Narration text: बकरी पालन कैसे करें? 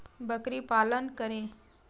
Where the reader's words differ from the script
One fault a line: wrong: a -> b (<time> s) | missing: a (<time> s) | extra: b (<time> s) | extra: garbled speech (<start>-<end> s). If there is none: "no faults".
missing: कैसे (1.1 s)